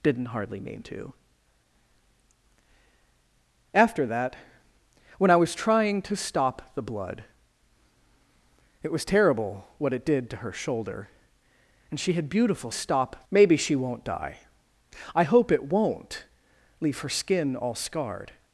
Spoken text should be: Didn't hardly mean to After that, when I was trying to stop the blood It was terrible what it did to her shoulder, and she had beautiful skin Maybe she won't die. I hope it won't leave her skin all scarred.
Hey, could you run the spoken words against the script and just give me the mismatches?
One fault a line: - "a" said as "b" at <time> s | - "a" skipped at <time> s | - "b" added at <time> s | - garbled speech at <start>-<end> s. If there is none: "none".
- "skin" said as "stop" at 12.7 s